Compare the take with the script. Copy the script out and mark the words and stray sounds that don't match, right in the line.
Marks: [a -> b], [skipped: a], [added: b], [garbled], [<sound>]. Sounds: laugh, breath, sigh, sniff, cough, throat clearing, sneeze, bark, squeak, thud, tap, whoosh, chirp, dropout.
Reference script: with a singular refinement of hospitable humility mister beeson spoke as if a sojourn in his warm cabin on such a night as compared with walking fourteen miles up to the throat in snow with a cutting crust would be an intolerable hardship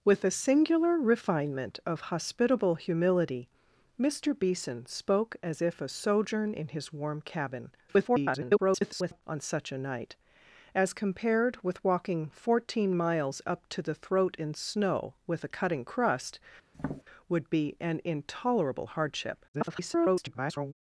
with a singular refinement of hospitable humility mister beeson spoke as if a sojourn in his warm cabin [garbled] on such a night as compared with walking fourteen miles up to the throat in snow with a cutting crust [tap] would be an intolerable hardship [garbled]